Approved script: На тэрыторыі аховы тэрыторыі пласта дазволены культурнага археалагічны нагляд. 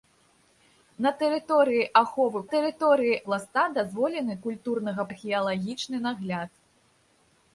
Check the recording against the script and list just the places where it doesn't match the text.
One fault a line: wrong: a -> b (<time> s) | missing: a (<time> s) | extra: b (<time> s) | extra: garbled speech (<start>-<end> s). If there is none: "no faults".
no faults